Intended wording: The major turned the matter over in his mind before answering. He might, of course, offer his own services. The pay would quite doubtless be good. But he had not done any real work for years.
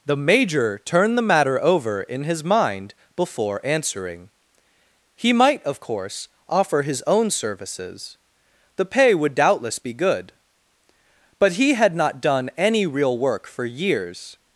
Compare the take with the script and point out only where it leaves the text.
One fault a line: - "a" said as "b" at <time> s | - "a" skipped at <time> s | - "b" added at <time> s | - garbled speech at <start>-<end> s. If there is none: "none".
- "quite" skipped at 9.3 s